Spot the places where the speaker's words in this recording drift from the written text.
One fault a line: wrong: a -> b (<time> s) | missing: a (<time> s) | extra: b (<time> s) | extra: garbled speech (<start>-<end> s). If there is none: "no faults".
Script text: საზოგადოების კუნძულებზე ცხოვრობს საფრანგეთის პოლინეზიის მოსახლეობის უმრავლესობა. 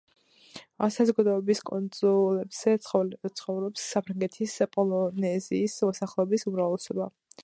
no faults